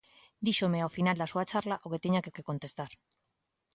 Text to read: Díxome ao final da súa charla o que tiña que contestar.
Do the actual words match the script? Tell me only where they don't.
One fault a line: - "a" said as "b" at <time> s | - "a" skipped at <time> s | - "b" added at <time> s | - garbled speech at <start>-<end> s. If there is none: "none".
- "que" added at 2.4 s